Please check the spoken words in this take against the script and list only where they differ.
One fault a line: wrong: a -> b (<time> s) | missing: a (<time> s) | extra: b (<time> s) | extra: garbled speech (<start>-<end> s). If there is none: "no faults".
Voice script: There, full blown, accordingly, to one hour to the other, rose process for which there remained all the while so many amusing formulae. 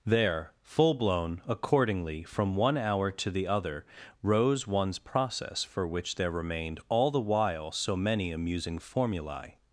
wrong: to -> from (2.2 s)
extra: one's (4.7 s)